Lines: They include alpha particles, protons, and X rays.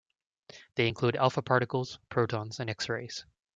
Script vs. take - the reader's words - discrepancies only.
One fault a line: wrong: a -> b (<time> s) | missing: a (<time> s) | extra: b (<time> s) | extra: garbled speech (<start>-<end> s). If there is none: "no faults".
no faults